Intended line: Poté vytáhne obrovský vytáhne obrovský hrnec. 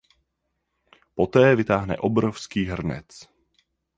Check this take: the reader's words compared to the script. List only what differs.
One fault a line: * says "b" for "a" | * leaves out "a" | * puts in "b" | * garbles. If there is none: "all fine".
* leaves out "vytáhne obrovský"